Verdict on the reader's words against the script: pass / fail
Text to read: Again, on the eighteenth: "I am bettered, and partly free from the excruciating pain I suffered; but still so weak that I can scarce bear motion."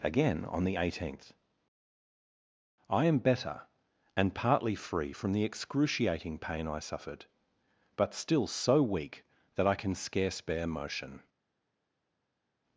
fail